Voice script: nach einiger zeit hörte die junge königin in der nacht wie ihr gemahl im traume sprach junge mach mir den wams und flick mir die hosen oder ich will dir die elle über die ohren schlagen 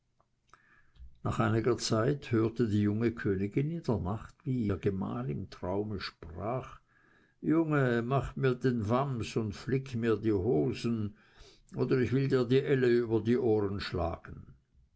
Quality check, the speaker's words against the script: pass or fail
pass